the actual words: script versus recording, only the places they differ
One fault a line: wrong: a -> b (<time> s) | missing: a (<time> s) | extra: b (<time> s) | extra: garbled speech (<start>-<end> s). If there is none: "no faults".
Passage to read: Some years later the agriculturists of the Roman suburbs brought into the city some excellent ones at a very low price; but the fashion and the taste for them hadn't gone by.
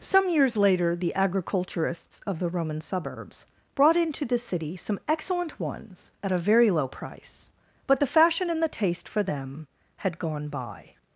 wrong: hadn't -> had (10.0 s)